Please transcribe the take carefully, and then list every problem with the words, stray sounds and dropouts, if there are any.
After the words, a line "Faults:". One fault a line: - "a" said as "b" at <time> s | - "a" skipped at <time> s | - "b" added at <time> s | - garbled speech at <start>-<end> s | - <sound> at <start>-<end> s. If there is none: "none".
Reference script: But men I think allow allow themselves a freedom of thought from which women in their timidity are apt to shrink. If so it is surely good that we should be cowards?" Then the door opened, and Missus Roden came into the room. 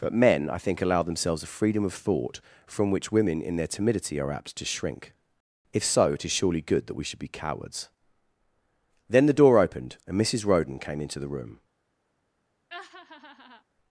But men I think allow themselves a freedom of thought from which women in their timidity are apt to shrink. If so it is surely good that we should be cowards?" Then the door opened, and Missus Roden came into the room.
Faults:
- "allow" skipped at 1.0 s
- laugh at 12.7-13.6 s